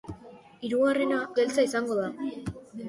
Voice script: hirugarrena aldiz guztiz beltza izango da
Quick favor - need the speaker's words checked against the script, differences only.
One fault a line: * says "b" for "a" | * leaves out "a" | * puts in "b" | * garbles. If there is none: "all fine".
* leaves out "aldiz guztiz"